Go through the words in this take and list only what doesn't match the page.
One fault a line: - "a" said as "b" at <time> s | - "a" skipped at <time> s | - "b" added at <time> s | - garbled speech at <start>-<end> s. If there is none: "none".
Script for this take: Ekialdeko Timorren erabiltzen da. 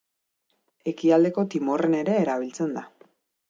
- "ere" added at 2.0 s